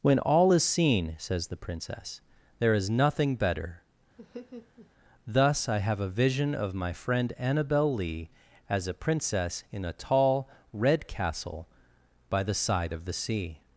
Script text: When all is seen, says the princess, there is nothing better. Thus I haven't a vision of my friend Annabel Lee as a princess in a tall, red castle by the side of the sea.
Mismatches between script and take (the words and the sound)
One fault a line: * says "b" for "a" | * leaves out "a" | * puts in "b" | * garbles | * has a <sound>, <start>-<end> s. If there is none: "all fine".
* has a laugh, 4.2-4.9 s
* says "have" for "haven't"